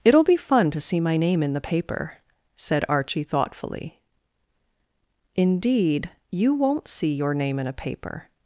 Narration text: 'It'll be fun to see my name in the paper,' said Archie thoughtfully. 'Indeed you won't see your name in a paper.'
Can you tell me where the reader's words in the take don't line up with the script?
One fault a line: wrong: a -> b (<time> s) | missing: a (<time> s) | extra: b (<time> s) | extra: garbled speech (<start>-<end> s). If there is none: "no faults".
no faults